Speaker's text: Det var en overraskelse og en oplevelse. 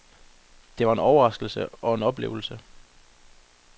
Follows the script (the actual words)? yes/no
yes